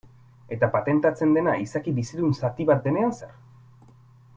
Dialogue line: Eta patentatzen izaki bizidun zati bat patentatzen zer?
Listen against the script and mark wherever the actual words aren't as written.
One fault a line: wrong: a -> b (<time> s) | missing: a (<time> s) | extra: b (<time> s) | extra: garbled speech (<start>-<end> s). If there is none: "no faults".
extra: dena (1.4 s)
wrong: patentatzen -> denean (2.9 s)